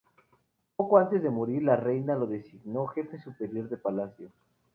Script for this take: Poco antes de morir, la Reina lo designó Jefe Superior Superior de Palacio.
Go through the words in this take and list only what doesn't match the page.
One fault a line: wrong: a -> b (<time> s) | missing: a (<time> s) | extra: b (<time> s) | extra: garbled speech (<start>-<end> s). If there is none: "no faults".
missing: Superior (3.7 s)